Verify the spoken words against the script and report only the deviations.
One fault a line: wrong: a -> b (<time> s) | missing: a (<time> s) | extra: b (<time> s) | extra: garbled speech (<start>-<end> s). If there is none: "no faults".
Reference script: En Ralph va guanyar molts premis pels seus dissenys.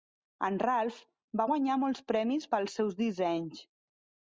no faults